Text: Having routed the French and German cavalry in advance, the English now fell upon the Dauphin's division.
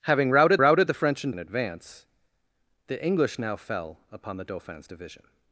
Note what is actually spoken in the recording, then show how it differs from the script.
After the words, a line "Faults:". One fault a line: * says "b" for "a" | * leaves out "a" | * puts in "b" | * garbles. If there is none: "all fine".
Having routed routed the French and In advance, the English now fell upon the Dauphin's division.
Faults:
* puts in "routed"
* leaves out "German cavalry"